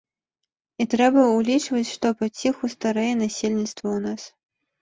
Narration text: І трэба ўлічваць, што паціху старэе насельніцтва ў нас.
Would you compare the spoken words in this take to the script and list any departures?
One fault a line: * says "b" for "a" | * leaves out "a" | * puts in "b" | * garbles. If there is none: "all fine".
all fine